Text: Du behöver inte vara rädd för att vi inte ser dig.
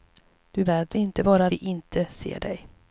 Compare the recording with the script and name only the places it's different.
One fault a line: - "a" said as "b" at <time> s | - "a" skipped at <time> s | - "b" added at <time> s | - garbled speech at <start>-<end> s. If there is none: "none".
- "behöver" said as "rädd" at 0.6 s
- "rädd för att" skipped at 1.5 s